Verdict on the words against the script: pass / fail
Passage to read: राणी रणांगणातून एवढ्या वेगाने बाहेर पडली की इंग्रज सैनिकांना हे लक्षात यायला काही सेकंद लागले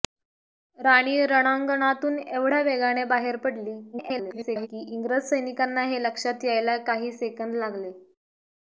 fail